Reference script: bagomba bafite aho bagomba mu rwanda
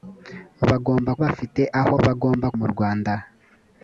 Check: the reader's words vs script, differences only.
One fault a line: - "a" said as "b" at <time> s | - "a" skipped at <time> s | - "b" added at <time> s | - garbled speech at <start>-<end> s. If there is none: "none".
none